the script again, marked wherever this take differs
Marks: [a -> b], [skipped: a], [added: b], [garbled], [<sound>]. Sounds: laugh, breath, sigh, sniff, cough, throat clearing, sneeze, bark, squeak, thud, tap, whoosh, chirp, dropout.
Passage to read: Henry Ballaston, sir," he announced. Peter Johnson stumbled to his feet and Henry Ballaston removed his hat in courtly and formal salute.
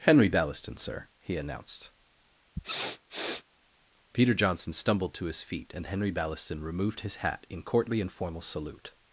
Henry Ballaston, sir," he announced. [sniff] Peter Johnson stumbled to his feet and Henry Ballaston removed his hat in courtly and formal salute.